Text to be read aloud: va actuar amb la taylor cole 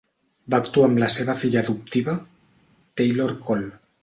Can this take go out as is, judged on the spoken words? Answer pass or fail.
fail